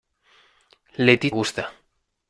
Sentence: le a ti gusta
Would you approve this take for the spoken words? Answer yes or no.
yes